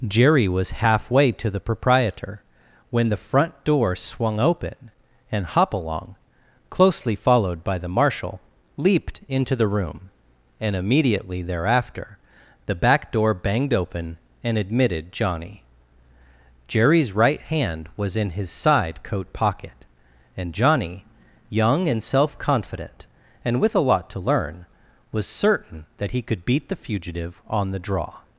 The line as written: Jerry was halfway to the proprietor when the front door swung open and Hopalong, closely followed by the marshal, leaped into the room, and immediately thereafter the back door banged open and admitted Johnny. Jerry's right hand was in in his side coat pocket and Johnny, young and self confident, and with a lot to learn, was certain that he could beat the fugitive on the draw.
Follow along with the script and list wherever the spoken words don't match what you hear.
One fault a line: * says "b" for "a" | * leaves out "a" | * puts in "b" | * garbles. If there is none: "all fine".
* leaves out "in"